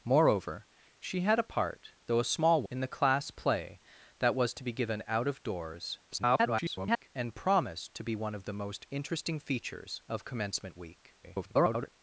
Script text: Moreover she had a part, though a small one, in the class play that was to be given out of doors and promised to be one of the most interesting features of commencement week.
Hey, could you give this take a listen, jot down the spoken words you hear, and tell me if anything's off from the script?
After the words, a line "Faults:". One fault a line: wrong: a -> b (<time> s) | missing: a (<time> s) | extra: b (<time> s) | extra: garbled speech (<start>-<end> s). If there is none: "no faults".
Moreover she had a part, though a small in the class play that was to be given out of doors [garbled] and promised to be one of the most interesting features of commencement week. [garbled]
Faults:
missing: one (2.6 s)
extra: garbled speech (6.1-7.1 s)
extra: garbled speech (11.2-11.9 s)